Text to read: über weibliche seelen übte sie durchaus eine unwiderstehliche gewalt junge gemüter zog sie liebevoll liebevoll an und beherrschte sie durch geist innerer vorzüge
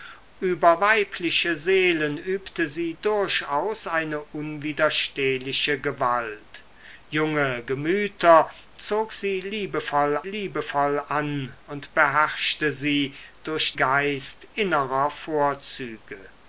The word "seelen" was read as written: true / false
true